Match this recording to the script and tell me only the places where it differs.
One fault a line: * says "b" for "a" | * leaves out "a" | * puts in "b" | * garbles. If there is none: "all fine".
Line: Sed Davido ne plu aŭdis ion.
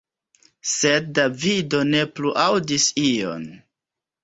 all fine